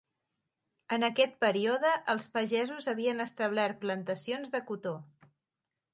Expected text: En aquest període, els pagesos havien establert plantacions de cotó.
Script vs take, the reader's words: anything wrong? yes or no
no